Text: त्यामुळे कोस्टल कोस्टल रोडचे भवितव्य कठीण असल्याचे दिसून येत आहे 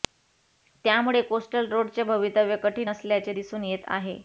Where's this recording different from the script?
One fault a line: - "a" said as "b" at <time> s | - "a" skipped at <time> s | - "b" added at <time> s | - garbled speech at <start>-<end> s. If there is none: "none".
- "कोस्टल" skipped at 1.7 s